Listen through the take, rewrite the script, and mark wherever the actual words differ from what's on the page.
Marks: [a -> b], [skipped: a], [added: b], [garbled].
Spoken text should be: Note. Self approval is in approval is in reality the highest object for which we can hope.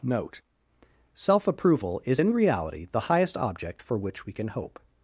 Note. Self approval is in [skipped: approval is in] reality the highest object for which we can hope.